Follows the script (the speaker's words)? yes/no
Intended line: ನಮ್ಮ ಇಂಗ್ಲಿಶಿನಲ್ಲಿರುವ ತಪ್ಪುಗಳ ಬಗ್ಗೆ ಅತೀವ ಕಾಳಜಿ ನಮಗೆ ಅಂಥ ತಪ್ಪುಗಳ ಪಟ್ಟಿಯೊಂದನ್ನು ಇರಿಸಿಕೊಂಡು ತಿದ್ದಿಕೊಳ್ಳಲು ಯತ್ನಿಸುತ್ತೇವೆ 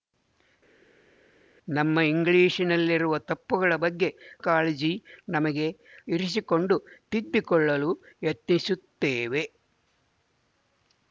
no